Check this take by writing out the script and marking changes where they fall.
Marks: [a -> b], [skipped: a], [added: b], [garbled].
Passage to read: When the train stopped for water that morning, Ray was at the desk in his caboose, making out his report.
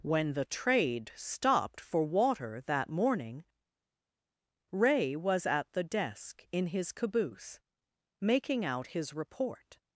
When the [train -> trade] stopped for water that morning, Ray was at the desk in his caboose, making out his report.